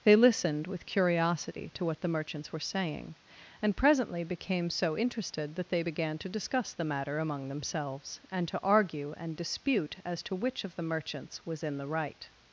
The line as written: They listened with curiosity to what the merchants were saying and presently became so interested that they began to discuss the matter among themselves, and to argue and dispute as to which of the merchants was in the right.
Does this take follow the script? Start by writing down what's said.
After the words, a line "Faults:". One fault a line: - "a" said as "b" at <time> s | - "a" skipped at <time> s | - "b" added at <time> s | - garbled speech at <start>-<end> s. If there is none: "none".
They listened with curiosity to what the merchants were saying and presently became so interested that they began to discuss the matter among themselves, and to argue and dispute as to which of the merchants was in the right.
Faults:
none